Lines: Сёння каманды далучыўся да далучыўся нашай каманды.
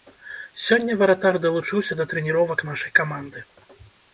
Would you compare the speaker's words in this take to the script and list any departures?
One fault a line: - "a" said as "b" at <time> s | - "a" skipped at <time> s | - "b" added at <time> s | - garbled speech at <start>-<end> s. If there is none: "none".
- "каманды" said as "варатар" at 1.0 s
- "далучыўся" said as "трэніровак" at 2.1 s